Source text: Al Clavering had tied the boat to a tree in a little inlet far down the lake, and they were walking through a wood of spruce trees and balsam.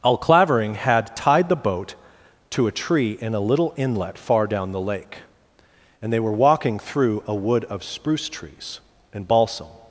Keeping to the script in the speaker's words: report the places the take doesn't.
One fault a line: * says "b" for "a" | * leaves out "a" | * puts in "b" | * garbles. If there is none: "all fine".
all fine